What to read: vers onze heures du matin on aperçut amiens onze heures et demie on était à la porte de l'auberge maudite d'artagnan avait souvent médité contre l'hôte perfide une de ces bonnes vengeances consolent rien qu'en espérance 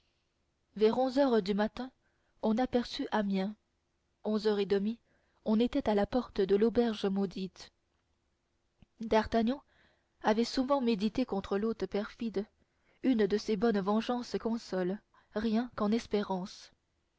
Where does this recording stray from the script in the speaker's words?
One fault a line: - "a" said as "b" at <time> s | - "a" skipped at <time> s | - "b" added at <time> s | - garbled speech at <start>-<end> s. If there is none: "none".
none